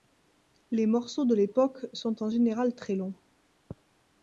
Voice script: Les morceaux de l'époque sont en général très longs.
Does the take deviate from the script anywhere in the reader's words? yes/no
no